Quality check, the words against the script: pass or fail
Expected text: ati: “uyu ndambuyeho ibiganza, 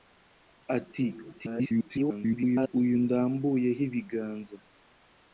fail